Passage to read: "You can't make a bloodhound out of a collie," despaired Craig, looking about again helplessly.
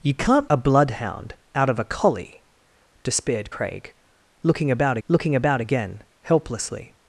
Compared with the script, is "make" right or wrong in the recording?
wrong